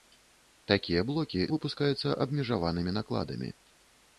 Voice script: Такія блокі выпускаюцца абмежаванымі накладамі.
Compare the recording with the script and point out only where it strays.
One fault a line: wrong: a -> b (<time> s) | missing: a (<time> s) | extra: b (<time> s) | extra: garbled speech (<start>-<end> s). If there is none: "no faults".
no faults